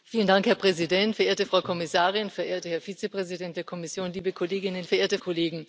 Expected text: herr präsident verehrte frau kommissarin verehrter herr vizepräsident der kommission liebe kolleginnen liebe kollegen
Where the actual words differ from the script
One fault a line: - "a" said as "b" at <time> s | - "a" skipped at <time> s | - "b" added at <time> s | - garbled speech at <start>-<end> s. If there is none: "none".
- "liebe" said as "verehrte" at 4.9 s